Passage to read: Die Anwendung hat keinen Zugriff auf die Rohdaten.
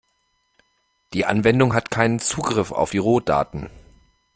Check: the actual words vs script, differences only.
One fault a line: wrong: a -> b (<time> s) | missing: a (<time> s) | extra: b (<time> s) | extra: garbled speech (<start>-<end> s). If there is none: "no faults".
no faults